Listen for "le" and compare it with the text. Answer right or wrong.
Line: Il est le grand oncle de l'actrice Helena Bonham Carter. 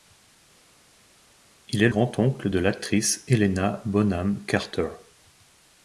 wrong